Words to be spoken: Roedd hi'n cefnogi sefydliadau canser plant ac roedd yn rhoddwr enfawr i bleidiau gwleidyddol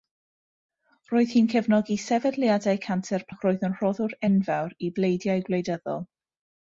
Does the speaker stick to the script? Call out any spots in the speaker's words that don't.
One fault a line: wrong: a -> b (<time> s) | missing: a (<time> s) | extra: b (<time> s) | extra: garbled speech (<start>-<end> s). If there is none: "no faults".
missing: plant (3.3 s)